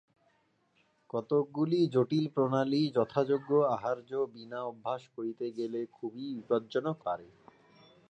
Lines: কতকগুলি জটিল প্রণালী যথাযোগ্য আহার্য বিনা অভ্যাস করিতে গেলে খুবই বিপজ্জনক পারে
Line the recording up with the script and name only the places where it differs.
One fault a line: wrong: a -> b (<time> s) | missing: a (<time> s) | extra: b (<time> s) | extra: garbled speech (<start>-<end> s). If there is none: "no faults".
no faults